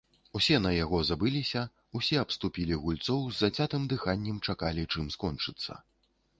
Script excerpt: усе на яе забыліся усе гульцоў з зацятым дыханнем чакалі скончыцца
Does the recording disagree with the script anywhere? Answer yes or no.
yes